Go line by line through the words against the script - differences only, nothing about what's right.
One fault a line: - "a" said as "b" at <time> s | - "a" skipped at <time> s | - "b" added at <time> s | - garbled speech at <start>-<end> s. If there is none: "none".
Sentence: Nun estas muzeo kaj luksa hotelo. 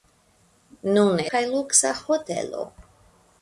- "estas muzeo" skipped at 1.2 s